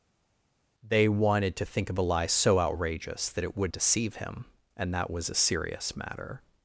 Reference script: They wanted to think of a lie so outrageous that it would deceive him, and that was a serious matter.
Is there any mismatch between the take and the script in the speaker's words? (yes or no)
no